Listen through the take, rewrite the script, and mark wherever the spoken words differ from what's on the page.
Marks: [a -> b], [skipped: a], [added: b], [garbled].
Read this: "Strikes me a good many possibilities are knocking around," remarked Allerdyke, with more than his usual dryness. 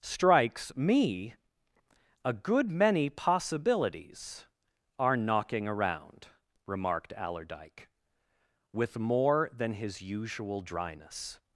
"Strikes me a good many possibilities are knocking around," remarked Allerdyke, with more than his usual dryness.